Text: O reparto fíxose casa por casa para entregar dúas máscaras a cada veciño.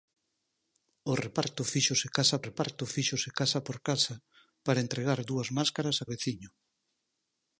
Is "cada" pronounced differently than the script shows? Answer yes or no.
yes